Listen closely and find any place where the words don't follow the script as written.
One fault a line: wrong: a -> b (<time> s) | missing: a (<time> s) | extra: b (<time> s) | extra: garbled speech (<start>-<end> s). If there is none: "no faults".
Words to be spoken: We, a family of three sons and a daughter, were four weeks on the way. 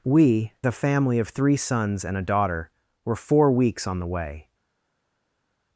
no faults